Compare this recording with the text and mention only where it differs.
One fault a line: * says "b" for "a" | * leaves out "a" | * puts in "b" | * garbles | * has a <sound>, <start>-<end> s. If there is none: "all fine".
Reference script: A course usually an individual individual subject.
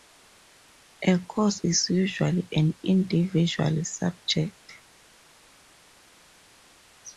* puts in "is"
* leaves out "individual"